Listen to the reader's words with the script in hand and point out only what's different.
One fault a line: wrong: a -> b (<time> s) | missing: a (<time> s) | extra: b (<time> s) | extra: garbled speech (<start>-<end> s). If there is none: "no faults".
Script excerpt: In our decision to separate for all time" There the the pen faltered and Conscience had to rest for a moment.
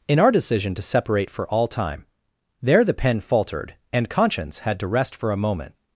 missing: the (2.9 s)